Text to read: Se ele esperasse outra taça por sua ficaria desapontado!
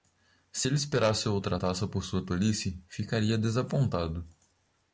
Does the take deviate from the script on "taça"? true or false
false